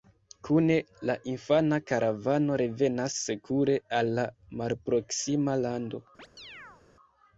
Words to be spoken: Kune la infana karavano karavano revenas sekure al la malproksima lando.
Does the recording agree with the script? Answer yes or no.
no